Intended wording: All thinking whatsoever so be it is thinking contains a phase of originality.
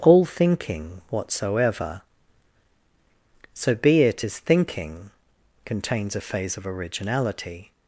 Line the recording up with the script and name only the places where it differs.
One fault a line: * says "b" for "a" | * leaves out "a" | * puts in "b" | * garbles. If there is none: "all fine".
all fine